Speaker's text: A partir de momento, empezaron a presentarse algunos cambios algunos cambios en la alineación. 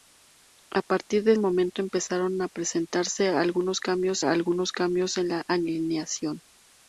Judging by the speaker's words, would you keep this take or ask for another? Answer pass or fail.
pass